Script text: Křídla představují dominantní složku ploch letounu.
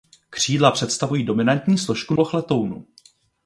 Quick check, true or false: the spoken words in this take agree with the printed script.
true